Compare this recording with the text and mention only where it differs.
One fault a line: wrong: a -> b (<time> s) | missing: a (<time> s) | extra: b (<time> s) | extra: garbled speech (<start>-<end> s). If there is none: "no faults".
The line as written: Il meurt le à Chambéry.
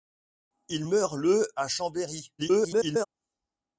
extra: garbled speech (2.4-3.1 s)